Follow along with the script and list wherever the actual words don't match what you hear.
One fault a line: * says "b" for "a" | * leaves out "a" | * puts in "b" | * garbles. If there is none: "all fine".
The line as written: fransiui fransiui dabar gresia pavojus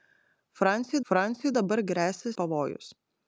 all fine